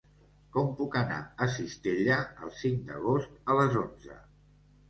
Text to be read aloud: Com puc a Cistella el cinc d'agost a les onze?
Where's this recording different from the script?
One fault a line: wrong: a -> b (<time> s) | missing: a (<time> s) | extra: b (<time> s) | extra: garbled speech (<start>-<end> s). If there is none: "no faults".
extra: anar (1.0 s)